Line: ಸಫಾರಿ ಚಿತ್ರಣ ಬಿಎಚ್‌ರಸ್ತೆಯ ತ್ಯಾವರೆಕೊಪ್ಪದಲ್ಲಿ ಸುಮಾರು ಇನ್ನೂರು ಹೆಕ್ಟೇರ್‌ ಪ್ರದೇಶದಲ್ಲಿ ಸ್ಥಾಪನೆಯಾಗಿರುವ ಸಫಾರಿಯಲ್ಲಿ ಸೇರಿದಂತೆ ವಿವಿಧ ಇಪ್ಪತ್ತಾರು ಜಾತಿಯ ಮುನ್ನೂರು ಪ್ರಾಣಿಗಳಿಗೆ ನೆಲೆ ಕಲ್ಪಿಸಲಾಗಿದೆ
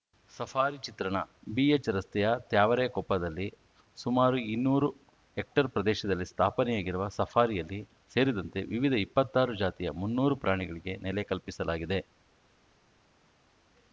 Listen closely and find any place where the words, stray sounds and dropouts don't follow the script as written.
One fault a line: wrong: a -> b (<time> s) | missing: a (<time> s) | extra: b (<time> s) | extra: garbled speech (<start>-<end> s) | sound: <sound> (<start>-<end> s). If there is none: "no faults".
no faults